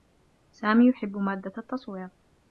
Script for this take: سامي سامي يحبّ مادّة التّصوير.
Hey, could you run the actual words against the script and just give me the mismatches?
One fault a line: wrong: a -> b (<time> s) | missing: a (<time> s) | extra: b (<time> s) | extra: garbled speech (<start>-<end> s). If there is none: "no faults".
missing: سامي (0.9 s)